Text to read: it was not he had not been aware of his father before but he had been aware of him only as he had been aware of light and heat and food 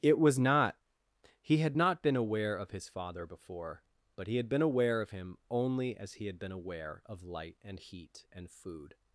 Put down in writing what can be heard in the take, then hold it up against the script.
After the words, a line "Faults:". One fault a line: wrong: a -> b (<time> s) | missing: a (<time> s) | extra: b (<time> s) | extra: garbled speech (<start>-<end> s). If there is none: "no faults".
it was not he had not been aware of his father before but he had been aware of him only as he had been aware of light and heat and food
Faults:
no faults